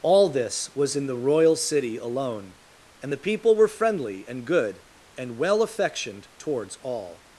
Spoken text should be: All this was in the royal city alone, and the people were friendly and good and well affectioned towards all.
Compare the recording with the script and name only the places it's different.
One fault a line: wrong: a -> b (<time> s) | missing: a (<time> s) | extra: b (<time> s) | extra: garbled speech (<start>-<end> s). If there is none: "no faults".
no faults